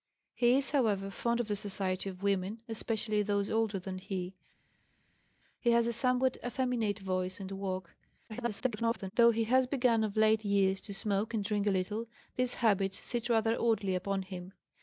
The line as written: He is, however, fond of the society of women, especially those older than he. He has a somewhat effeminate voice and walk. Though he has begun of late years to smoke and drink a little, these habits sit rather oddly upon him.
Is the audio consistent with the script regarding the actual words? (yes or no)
no